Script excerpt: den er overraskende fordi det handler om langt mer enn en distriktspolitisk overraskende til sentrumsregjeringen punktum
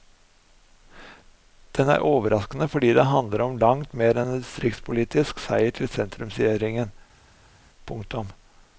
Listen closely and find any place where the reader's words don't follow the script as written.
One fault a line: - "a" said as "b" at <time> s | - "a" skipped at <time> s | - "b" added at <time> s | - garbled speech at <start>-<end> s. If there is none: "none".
- "overraskende" said as "seier" at 5.4 s